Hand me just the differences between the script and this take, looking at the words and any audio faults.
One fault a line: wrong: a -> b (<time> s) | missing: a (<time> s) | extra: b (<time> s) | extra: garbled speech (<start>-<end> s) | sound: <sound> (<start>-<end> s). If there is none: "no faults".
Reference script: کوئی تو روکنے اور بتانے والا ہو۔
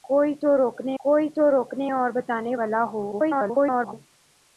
extra: کوئی تو روکنے (1.0 s)
extra: garbled speech (3.1-3.9 s)